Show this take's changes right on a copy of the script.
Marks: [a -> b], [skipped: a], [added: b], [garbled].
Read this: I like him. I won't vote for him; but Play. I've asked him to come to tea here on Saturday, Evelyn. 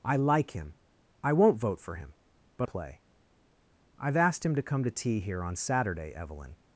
I like him. I won't vote for him; but Play. I've asked him to come to tea here on Saturday, Evelyn.